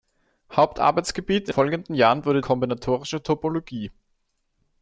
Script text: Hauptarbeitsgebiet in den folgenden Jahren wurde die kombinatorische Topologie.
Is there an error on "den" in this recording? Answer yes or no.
yes